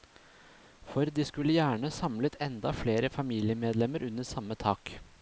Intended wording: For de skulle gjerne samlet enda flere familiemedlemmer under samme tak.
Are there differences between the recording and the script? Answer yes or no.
no